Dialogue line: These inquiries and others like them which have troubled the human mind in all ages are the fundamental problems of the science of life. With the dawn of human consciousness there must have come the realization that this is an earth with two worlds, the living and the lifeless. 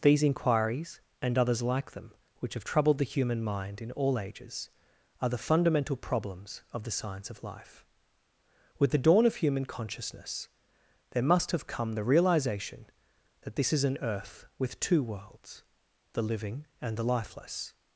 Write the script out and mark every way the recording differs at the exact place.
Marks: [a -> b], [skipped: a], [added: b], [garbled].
These inquiries and others like them which have troubled the human mind in all ages are the fundamental problems of the science of life. With the dawn of human consciousness there must have come the realization that this is an earth with two worlds, the living and the lifeless.